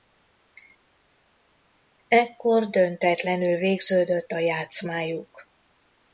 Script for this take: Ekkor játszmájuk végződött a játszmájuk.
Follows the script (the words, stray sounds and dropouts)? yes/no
no